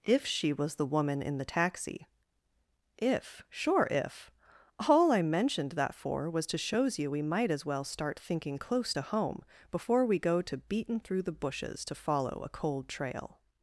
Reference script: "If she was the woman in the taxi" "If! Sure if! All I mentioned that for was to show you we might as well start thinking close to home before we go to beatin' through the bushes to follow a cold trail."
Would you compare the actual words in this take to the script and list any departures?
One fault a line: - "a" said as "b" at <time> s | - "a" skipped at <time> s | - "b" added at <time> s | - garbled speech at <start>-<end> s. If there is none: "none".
- "show" said as "shows" at 6.6 s